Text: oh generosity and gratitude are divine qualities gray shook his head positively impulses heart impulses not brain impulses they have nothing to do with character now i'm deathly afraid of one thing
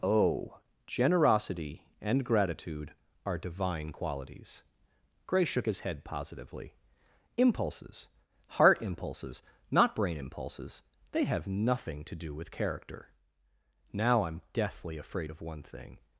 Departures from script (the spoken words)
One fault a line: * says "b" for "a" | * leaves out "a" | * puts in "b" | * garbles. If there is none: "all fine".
all fine